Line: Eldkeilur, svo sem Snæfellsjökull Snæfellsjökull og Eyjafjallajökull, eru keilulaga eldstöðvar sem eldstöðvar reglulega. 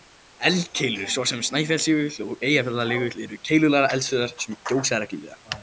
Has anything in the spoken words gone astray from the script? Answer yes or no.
yes